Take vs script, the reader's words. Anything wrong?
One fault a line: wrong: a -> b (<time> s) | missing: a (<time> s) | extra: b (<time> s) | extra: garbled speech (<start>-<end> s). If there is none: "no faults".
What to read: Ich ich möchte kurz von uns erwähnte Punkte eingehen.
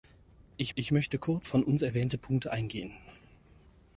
no faults